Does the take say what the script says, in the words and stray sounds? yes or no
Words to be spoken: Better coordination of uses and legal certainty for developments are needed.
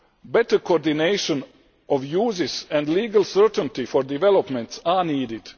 yes